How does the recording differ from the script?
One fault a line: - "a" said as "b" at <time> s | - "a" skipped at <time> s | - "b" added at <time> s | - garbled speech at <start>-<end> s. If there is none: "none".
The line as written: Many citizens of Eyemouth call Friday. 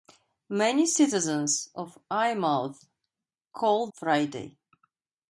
none